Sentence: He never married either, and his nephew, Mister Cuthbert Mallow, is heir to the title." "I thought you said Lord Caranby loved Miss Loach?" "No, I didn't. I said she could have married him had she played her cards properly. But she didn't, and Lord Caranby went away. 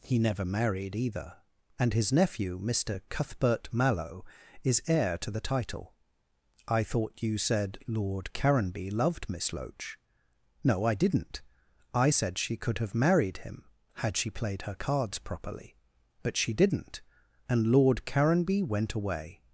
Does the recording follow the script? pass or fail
pass